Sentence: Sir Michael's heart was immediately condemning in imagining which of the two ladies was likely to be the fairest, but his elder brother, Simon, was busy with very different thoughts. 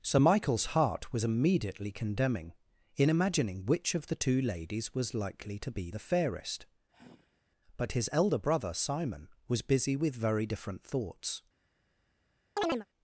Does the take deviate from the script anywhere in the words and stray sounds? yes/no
yes